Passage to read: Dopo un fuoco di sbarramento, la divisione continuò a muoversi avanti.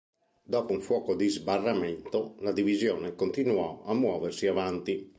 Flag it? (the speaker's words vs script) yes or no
no